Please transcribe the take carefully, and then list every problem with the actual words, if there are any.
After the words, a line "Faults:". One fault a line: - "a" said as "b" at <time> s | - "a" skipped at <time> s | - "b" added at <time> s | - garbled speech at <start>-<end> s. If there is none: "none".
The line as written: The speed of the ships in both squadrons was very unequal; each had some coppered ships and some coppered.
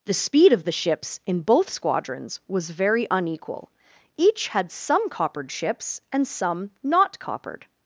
The speed of the ships in both squadrons was very unequal; each had some coppered ships and some not coppered.
Faults:
- "not" added at 6.8 s